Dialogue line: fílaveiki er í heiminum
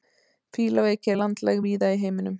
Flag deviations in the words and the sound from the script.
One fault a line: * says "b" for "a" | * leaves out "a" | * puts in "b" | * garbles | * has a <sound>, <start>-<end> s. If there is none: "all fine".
* puts in "landlæg víða"